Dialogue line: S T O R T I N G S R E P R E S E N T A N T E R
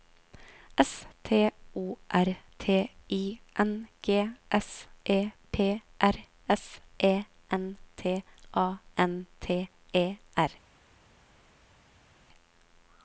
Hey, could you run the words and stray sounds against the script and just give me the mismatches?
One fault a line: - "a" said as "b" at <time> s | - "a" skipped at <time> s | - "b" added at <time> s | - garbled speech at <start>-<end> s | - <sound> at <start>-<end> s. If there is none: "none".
- "R" skipped at 4.9 s
- "E" skipped at 6.1 s